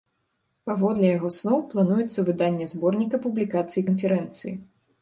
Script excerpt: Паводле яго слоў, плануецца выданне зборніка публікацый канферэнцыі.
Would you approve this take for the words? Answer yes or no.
yes